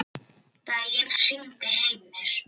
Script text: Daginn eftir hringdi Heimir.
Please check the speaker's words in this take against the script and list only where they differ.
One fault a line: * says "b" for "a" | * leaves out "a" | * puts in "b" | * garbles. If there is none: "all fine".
* leaves out "eftir"